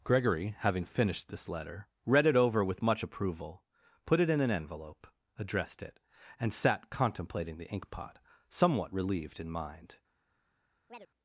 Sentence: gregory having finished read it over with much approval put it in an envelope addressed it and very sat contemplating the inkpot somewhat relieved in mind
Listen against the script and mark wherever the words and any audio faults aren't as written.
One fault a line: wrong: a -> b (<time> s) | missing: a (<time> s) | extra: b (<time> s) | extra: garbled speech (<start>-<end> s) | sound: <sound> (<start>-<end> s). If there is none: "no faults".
extra: this letter (1.3 s)
missing: very (6.5 s)
sound: chirp (10.9-11.1 s)